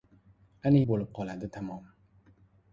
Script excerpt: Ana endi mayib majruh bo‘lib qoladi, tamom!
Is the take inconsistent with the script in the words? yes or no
yes